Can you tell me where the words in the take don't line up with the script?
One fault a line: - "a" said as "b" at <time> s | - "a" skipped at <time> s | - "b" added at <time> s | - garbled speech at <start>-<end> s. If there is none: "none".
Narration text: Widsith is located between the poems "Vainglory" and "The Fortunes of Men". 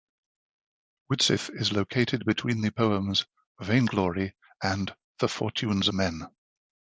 - "of" skipped at 5.9 s